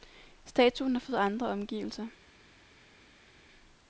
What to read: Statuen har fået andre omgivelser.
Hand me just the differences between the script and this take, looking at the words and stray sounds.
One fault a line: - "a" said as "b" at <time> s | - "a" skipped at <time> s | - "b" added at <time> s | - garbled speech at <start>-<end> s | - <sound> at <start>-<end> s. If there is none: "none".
none